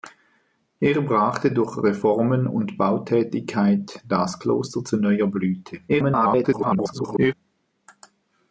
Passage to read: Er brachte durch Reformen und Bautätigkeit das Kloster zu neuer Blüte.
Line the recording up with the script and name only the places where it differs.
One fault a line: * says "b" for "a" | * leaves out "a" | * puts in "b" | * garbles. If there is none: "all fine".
* garbles